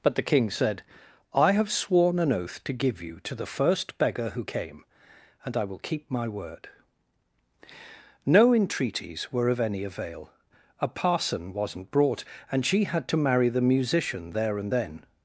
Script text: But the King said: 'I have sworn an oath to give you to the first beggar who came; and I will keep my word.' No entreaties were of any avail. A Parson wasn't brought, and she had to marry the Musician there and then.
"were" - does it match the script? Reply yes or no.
yes